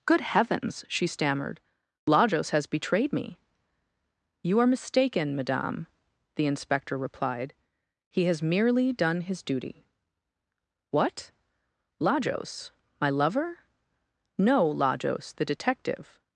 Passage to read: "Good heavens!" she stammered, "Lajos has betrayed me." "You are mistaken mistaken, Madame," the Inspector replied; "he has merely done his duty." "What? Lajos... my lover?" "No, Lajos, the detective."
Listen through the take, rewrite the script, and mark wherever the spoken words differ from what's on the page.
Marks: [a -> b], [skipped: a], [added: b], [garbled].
"Good heavens!" she stammered, "Lajos has betrayed me." "You are mistaken [skipped: mistaken,] Madame," the Inspector replied; "he has merely done his duty." "What? Lajos... my lover?" "No, Lajos, the detective."